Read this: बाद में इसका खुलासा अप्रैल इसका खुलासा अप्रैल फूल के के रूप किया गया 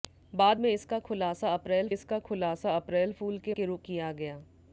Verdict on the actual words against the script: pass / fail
pass